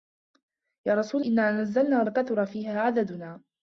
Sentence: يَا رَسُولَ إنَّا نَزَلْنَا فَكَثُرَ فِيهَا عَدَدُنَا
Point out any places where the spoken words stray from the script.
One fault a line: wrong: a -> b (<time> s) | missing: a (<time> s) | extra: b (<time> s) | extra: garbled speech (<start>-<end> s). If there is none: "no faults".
no faults